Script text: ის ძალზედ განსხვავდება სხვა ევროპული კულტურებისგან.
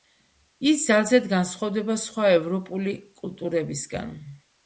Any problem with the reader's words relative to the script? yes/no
no